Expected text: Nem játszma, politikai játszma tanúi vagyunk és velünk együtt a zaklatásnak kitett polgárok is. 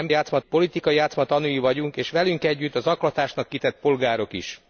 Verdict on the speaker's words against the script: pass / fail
pass